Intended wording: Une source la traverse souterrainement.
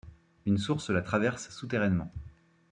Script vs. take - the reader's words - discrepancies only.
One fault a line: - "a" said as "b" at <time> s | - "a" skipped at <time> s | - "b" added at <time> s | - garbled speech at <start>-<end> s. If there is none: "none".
none